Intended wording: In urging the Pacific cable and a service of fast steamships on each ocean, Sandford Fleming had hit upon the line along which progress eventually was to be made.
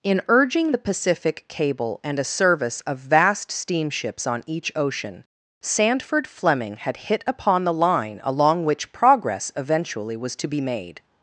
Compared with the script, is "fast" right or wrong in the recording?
wrong